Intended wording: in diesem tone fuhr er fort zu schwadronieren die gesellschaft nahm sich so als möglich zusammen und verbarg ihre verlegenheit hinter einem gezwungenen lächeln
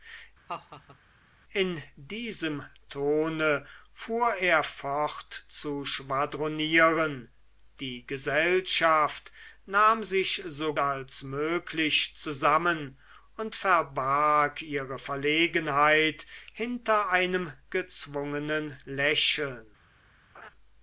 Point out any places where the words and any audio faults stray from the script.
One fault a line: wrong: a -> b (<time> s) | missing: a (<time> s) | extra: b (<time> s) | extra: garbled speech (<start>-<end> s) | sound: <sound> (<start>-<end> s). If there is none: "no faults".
sound: laugh (0.5-1.0 s)
sound: laugh (20.3-20.5 s)